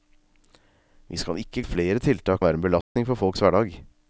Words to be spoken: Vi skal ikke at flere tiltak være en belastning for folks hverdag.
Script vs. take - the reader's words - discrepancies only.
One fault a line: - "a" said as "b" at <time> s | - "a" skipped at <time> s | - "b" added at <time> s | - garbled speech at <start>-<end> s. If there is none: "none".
none